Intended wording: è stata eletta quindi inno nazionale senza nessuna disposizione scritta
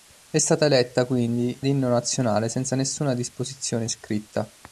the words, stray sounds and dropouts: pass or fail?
pass